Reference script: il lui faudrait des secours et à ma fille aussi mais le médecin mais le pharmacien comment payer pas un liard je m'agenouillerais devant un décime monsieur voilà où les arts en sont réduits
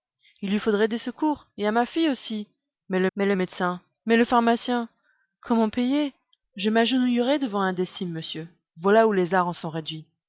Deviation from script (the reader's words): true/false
true